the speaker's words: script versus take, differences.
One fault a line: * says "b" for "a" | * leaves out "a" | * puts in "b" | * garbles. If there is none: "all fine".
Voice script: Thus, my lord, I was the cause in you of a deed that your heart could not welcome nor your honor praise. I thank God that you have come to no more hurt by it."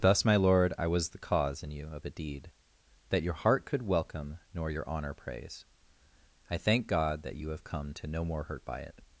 * leaves out "not"